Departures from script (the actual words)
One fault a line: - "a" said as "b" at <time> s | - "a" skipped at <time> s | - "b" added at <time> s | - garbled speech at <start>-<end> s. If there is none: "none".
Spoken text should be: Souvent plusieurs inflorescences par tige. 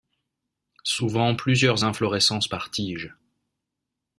none